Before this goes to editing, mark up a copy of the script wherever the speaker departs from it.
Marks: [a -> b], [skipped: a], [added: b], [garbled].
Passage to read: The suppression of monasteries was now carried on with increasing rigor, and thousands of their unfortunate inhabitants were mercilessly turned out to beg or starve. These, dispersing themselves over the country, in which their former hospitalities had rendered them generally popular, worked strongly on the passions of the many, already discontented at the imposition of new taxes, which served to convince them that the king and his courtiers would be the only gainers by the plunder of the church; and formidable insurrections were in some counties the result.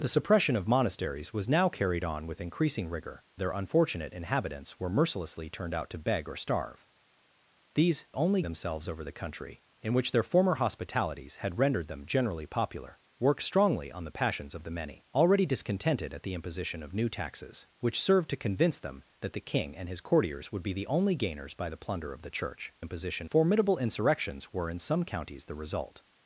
The suppression of monasteries was now carried on with increasing rigor, [skipped: and thousands of] their unfortunate inhabitants were mercilessly turned out to beg or starve. These, [dispersing -> only] themselves over the country, in which their former hospitalities had rendered them generally popular, worked strongly on the passions of the many, already discontented at the imposition of new taxes, which served to convince them that the king and his courtiers would be the only gainers by the plunder of the church; [and -> imposition] formidable insurrections were in some counties the result.